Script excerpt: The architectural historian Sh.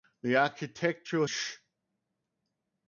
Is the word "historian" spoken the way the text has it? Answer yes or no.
no